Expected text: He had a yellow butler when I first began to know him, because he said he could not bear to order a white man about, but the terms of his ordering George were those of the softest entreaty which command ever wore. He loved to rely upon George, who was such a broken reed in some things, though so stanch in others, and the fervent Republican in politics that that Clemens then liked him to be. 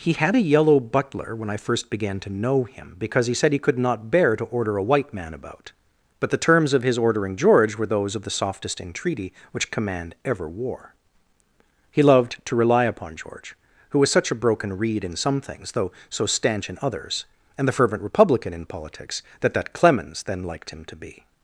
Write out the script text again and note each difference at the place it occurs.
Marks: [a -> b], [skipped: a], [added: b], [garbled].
He had a yellow butler when I first began to know him, because he said he could not bear to order a white man about, but the terms of his ordering George were those of the softest entreaty which command ever wore. He loved to rely upon George, who was such a broken reed in some things, though so stanch in others, and the fervent Republican in politics that that Clemens then liked him to be.